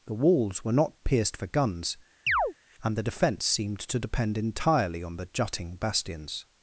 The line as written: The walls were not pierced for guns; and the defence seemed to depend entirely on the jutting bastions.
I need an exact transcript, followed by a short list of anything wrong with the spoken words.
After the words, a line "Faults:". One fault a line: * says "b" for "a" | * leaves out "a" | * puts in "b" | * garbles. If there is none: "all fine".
The walls were not pierced for guns; and the defence seemed to depend entirely on the jutting bastions.
Faults:
all fine